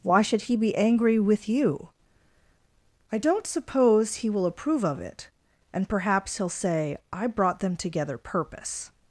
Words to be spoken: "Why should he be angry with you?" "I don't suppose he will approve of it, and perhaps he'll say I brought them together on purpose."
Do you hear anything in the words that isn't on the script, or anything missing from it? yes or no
yes